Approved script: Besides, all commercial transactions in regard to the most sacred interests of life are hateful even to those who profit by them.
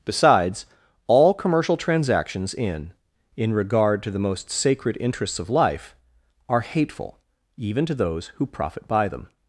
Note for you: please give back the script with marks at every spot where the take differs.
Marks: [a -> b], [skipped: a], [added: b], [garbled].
Besides, all commercial transactions in [added: in] regard to the most sacred interests of life are hateful even to those who profit by them.